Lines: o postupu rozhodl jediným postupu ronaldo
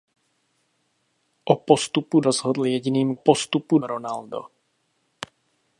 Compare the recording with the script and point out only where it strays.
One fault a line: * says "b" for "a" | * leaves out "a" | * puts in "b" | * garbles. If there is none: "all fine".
all fine